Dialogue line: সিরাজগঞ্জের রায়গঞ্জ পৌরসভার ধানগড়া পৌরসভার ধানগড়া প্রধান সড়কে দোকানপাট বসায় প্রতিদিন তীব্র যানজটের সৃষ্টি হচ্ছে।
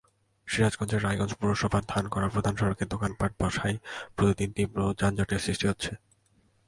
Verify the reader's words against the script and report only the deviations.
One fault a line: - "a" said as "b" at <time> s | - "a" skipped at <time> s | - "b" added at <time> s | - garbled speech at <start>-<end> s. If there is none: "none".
- "পৌরসভার ধানগড়া" skipped at 2.3 s